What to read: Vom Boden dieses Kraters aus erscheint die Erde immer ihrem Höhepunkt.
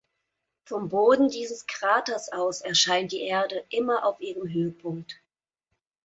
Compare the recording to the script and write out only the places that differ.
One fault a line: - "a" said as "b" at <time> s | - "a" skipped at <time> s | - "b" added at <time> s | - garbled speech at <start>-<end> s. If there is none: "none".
- "auf" added at 4.0 s